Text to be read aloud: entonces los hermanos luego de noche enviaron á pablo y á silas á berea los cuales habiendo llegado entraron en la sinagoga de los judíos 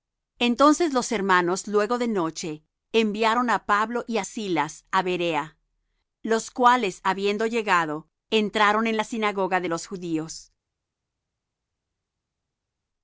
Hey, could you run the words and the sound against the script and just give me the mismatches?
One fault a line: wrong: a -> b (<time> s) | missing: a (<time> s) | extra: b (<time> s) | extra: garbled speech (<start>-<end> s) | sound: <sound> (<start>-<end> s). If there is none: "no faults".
no faults